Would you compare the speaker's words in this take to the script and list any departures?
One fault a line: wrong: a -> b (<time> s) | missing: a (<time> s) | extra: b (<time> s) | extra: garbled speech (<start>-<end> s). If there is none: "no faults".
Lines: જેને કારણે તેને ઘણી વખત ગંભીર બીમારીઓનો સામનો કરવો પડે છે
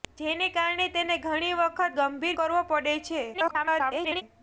missing: બીમારીઓનો સામનો (2.4 s)
extra: garbled speech (3.3-4.2 s)